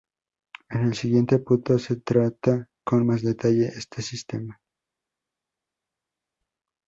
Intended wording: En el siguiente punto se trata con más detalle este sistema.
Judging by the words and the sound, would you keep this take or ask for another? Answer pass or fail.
pass